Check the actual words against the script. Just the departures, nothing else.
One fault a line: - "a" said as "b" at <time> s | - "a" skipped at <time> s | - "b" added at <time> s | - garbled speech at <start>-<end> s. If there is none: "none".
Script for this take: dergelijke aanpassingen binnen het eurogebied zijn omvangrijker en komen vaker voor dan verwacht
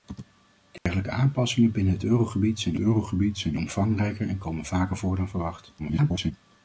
- "eurogebied zijn" added at 2.8 s
- garbled speech at 5.8-6.3 s